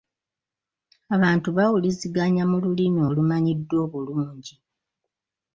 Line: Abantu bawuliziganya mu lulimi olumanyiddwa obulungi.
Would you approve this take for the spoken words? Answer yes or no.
yes